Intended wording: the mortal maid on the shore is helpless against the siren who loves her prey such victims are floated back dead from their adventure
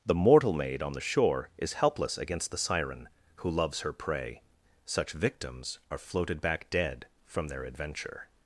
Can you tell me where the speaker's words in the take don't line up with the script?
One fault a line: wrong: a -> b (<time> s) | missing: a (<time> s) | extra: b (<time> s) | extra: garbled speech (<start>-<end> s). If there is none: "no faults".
no faults